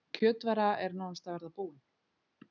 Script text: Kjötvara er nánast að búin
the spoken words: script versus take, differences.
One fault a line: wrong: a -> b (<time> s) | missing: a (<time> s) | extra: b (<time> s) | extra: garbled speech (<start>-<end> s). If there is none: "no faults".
extra: verða (1.4 s)